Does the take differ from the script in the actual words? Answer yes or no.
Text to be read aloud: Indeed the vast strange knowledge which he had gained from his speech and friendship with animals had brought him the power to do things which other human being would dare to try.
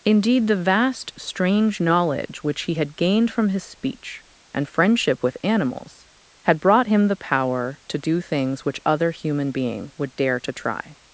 no